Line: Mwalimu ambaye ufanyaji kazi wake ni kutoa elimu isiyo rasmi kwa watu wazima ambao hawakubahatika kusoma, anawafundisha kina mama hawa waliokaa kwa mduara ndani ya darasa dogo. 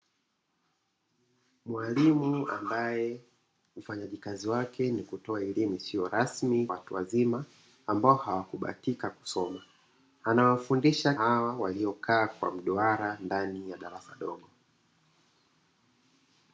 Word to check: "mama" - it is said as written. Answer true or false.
false